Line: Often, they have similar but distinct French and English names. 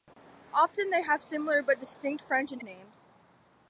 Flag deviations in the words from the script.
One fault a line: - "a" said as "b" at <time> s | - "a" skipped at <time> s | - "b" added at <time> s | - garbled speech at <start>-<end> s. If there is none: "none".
- "English" skipped at 2.6 s